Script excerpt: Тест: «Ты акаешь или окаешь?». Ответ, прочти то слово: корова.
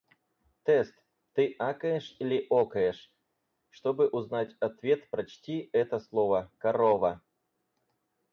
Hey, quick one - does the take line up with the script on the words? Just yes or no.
no